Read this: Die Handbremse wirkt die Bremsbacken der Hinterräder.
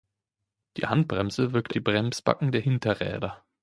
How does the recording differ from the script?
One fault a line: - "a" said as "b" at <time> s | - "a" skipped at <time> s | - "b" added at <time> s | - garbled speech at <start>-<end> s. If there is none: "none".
none